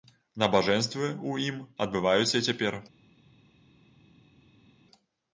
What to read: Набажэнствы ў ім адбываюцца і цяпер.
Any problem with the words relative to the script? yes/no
no